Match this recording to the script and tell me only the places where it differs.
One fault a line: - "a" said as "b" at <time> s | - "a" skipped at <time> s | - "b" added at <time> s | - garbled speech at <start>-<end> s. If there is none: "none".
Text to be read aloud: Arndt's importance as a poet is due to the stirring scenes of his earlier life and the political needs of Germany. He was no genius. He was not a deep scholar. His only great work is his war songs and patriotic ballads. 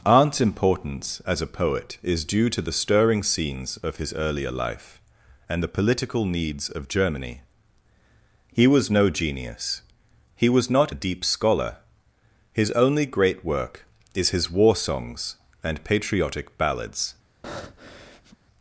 none